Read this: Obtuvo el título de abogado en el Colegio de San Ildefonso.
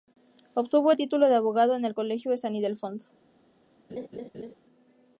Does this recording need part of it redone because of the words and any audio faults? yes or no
yes